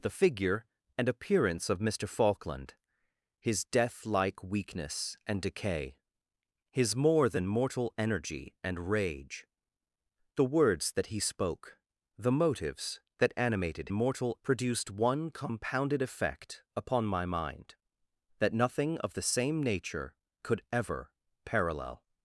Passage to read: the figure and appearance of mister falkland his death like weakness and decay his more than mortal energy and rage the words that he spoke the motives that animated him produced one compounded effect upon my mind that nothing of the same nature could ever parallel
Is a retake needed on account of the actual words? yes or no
yes